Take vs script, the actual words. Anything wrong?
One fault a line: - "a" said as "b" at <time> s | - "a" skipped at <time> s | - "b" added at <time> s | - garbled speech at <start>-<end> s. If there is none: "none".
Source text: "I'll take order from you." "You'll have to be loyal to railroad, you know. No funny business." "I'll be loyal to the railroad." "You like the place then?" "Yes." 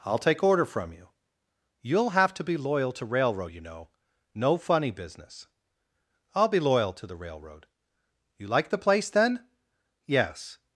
none